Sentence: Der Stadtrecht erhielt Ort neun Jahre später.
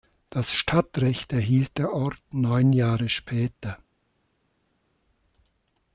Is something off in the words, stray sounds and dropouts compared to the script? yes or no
yes